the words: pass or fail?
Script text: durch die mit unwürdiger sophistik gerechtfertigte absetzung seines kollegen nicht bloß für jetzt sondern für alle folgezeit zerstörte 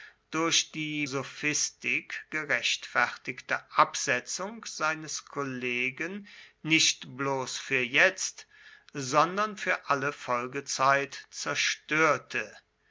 fail